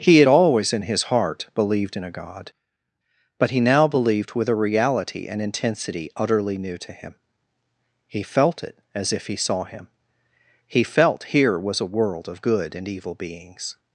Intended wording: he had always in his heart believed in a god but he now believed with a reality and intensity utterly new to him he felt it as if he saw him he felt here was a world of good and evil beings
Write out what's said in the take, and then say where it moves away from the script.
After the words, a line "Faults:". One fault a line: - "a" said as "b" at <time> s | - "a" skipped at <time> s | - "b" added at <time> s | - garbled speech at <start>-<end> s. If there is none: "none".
he had always in his heart believed in a god but he now believed with a reality and intensity utterly new to him he felt it as if he saw him he felt here was a world of good and evil beings
Faults:
none